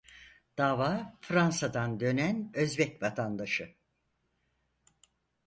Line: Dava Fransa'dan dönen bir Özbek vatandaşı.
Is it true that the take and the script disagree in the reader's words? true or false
true